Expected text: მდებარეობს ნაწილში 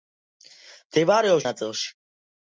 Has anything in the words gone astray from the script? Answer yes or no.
no